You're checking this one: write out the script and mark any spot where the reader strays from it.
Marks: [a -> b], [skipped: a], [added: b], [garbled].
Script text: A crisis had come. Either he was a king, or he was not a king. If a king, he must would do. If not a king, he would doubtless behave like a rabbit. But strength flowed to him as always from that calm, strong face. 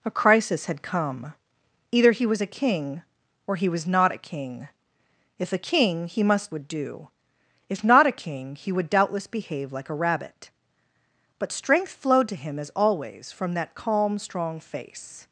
A crisis had come. Either he was a king, or he was not a king. If a king, he must would do. If not a king, he would doubtless behave like a rabbit. But strength flowed to him as always from that calm, strong face.